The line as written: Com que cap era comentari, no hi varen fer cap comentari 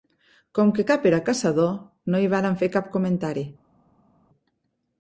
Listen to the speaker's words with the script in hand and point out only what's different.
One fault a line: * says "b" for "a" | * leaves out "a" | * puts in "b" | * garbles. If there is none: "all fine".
* says "caçador" for "comentari"